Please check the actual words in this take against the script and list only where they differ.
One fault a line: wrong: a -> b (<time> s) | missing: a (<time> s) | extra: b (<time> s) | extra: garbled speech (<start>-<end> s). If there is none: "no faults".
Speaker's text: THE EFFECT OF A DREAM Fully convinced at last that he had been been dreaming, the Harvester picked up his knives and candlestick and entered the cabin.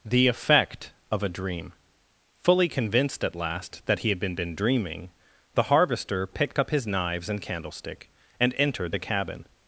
no faults